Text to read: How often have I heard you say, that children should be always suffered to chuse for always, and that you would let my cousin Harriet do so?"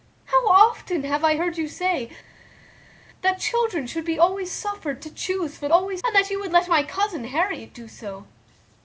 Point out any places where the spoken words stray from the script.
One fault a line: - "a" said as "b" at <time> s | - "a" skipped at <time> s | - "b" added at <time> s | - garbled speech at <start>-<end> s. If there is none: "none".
none